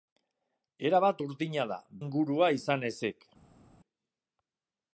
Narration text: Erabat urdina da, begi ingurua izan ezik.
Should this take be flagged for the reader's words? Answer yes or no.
yes